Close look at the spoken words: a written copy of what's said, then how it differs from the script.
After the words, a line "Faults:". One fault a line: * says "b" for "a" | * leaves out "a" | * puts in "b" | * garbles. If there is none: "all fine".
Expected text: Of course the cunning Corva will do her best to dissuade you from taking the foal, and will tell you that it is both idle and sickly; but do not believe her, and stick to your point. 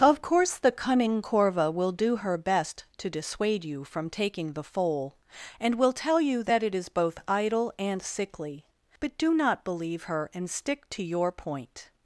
Of course the cunning Corva will do her best to dissuade you from taking the foal, and will tell you that it is both idle and sickly; but do not believe her, and stick to your point.
Faults:
all fine